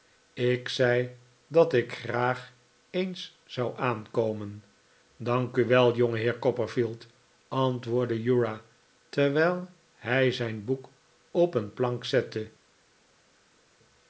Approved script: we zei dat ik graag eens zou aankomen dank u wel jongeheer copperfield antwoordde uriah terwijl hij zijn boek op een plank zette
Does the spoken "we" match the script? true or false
false